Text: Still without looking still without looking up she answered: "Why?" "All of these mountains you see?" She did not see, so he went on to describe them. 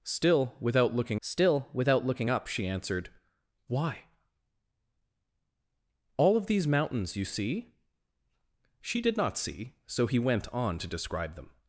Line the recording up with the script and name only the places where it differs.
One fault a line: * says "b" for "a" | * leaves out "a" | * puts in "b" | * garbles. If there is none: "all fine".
all fine